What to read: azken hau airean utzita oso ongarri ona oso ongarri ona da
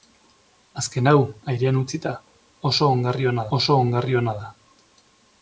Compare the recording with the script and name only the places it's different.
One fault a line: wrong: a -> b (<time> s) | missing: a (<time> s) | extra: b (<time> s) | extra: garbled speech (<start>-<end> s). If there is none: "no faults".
no faults